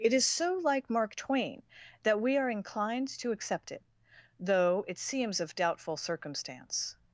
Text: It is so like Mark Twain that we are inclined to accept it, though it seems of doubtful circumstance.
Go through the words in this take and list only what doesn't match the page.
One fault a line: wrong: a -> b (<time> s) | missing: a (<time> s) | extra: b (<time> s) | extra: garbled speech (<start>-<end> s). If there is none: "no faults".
no faults